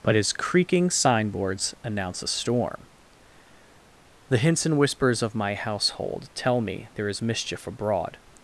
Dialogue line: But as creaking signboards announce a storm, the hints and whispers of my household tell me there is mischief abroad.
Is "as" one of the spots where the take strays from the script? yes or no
yes